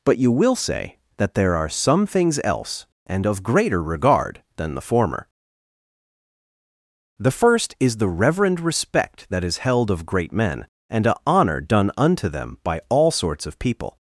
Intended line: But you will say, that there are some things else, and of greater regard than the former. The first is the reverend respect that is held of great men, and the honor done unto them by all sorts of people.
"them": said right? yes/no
yes